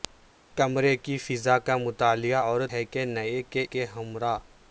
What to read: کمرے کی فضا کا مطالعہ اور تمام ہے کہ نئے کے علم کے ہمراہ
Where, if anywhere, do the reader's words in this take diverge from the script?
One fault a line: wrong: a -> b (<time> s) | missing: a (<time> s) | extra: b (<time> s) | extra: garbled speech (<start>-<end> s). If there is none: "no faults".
missing: تمام (2.6 s)
missing: علم (3.6 s)